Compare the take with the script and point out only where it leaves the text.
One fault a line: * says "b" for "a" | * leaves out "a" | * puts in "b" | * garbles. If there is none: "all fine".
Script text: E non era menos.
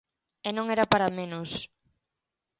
* puts in "para"